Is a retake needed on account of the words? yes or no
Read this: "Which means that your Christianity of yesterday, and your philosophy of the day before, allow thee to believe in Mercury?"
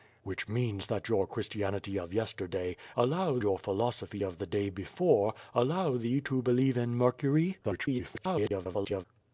yes